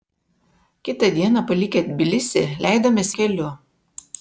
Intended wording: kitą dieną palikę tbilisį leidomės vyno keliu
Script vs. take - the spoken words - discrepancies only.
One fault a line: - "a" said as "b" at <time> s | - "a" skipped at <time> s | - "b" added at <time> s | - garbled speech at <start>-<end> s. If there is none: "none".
- "vyno" skipped at 3.1 s